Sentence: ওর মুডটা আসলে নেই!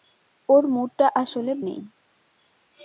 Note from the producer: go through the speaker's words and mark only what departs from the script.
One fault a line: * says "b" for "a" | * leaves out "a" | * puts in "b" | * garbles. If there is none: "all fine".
all fine